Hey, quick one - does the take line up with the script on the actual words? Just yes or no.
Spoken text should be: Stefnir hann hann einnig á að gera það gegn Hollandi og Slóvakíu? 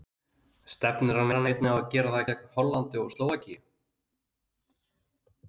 yes